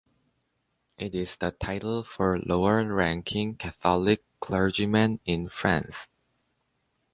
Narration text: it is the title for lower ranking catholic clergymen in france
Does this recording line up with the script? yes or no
yes